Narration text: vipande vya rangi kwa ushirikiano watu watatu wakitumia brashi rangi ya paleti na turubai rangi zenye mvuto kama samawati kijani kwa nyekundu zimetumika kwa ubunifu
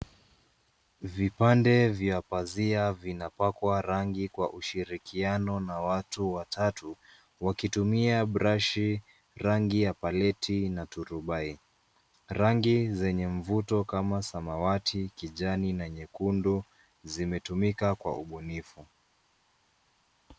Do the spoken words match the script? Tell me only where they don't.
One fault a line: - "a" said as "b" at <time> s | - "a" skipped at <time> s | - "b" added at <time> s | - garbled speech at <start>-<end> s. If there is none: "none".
- "pazia vinapakwa" added at 2.2 s
- "na" added at 5.6 s
- "kwa" said as "na" at 15.7 s